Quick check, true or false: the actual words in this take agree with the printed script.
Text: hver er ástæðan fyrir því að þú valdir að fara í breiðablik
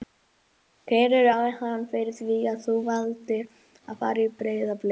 true